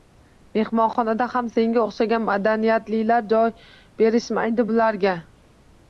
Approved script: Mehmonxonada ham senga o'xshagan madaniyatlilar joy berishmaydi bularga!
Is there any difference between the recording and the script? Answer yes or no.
no